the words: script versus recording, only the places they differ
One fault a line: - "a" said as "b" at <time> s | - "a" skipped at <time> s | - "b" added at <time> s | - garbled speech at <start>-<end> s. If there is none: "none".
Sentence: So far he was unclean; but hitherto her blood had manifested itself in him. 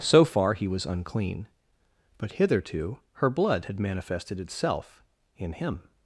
none